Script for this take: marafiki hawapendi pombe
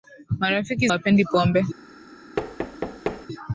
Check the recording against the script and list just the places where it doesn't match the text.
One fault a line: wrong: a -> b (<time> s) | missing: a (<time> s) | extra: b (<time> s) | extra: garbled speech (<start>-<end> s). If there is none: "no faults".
no faults